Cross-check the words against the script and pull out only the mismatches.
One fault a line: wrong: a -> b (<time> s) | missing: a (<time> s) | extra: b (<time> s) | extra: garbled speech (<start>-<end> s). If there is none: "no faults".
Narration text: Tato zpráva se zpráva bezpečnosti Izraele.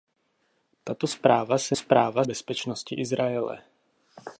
no faults